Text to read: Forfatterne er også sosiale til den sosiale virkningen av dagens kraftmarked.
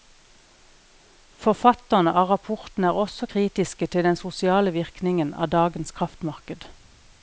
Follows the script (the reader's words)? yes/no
no